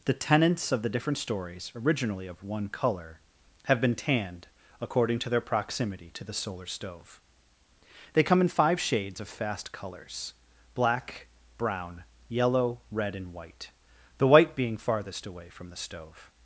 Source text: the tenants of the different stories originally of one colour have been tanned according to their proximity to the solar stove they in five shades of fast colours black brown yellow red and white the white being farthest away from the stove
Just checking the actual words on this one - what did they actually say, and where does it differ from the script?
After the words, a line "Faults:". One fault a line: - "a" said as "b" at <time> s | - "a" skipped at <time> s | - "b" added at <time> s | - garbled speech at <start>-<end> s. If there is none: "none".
the tenants of the different stories originally of one colour have been tanned according to their proximity to the solar stove they come in five shades of fast colours black brown yellow red and white the white being farthest away from the stove
Faults:
- "come" added at 8.2 s